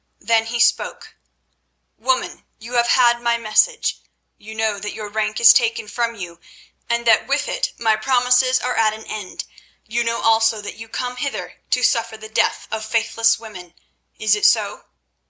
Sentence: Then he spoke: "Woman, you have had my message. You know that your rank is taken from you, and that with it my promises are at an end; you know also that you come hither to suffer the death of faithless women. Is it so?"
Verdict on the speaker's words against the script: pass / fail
pass